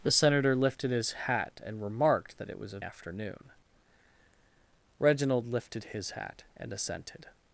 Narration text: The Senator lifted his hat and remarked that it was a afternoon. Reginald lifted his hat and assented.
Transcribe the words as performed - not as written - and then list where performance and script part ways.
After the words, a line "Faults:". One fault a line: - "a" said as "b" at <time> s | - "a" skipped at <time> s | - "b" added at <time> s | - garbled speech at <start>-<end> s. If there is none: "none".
The Senator lifted his hat and remarked that it was a afternoon. Reginald lifted his hat and assented.
Faults:
none